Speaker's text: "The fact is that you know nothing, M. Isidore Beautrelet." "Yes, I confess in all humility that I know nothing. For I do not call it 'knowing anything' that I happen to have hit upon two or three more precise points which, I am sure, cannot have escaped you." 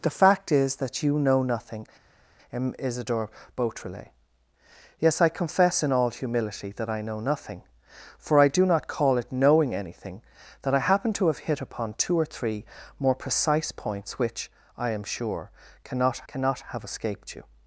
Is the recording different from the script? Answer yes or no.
yes